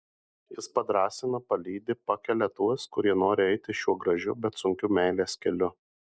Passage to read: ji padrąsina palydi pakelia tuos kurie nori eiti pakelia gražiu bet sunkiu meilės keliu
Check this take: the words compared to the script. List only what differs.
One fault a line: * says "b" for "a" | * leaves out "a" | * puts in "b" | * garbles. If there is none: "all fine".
* says "jis" for "ji"
* says "šiuo" for "pakelia"